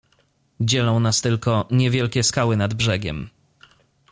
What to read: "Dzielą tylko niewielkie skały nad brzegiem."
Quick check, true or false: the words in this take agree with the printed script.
false